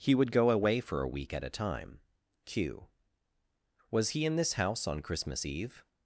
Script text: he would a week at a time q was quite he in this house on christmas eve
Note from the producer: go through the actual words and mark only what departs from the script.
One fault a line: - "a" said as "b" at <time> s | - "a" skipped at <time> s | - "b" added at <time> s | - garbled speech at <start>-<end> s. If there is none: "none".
- "go away for" added at 0.3 s
- "quite" skipped at 4.1 s